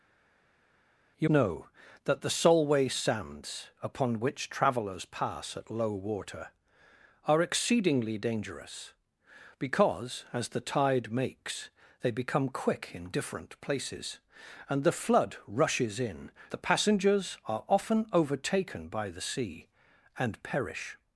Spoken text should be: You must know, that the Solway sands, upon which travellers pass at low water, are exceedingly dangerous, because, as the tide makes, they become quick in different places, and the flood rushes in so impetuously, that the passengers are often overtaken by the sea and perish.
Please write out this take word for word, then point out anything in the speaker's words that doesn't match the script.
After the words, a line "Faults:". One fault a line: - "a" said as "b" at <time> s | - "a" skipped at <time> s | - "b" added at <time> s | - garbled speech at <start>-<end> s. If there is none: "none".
You know, that the Solway sands, upon which travellers pass at low water, are exceedingly dangerous, because, as the tide makes, they become quick in different places, and the flood rushes in the passengers are often overtaken by the sea and perish.
Faults:
- "must" skipped at 1.3 s
- "so impetuously that" skipped at 16.3 s